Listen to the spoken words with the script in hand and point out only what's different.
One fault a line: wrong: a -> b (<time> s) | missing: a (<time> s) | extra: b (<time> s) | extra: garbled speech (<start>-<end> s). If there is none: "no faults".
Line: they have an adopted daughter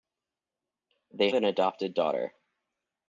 missing: have (1.3 s)